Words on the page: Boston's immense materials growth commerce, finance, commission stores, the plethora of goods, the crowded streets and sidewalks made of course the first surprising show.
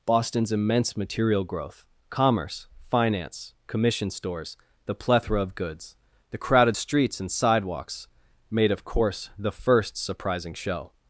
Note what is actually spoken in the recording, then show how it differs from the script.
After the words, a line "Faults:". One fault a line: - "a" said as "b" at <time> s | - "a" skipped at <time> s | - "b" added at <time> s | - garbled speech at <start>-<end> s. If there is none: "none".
Boston's immense material growth commerce, finance, commission stores, the plethora of goods, the crowded streets and sidewalks made of course the first surprising show.
Faults:
- "materials" said as "material" at 1.0 s